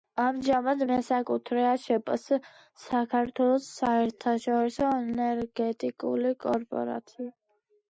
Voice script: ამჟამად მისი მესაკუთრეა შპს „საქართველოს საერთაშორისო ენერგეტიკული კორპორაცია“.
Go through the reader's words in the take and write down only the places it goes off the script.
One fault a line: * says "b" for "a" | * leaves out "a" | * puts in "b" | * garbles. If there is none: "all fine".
* leaves out "მისი"